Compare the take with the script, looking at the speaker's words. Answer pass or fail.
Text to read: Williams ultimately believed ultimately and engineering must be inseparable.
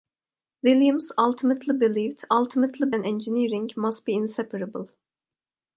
pass